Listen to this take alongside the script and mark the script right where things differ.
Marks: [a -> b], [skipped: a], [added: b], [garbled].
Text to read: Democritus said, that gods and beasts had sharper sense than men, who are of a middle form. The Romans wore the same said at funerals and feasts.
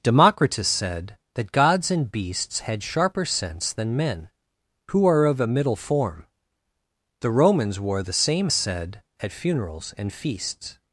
Democritus said, that gods and beasts had sharper sense than men, who are of a middle form. The Romans wore the same said at funerals and feasts.